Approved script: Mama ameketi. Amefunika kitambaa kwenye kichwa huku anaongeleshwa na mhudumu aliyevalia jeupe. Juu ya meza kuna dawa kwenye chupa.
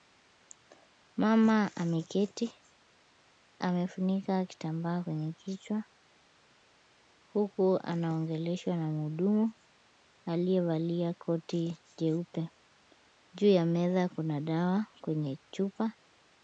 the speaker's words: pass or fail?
fail